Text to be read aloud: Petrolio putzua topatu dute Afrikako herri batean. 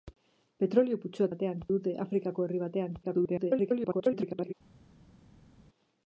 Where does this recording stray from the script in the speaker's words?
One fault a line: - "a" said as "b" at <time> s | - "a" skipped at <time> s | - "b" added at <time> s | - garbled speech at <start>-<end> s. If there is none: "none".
- "topatu" said as "batean" at 1.3 s
- garbled speech at 3.0-4.5 s